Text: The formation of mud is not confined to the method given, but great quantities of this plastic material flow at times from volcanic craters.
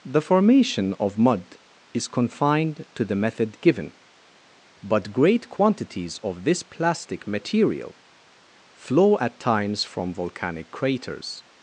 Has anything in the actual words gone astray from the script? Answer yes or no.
yes